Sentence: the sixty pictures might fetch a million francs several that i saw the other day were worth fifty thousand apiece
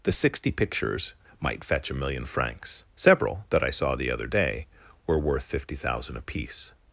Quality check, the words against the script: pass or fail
pass